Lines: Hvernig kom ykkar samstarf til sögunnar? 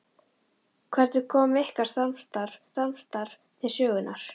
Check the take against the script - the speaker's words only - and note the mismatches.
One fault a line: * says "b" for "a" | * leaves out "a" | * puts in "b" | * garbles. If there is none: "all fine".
* puts in "samstarf"